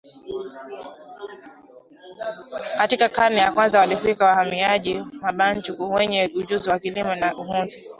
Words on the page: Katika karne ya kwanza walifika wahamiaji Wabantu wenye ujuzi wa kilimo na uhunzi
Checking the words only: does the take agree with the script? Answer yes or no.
yes